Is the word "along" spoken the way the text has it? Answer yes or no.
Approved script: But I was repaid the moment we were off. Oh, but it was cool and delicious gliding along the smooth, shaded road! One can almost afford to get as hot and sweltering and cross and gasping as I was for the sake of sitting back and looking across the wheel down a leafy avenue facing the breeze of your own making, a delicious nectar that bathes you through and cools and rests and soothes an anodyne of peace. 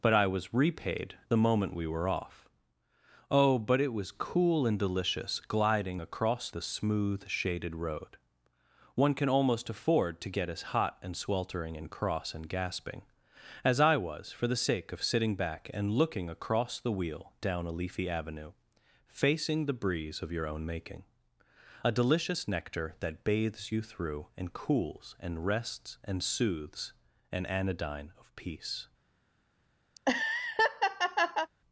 no